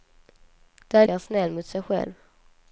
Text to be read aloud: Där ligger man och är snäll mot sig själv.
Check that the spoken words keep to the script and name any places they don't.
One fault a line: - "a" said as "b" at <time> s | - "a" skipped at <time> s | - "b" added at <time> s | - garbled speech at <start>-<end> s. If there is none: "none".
- "ligger man och" skipped at 1.1 s